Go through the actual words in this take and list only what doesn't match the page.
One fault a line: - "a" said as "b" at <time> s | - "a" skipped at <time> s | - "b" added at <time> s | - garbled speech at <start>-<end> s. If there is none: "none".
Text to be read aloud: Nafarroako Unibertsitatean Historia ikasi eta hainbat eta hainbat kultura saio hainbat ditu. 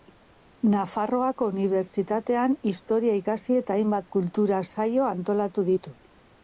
- "eta hainbat" skipped at 4.1 s
- "hainbat" said as "antolatu" at 5.2 s